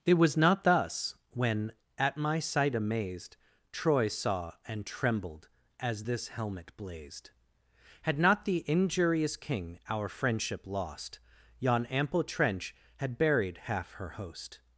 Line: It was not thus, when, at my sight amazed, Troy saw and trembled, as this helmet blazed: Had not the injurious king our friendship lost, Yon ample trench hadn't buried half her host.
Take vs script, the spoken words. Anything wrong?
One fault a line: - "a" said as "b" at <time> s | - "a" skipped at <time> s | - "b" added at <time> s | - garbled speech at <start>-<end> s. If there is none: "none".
- "hadn't" said as "had" at 13.0 s